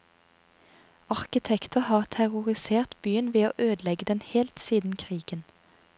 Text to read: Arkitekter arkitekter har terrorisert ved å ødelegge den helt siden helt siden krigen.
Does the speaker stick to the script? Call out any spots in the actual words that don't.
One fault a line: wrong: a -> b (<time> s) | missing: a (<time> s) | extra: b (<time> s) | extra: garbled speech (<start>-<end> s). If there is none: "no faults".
missing: arkitekter (1.8 s)
extra: byen (3.0 s)
missing: helt siden (5.0 s)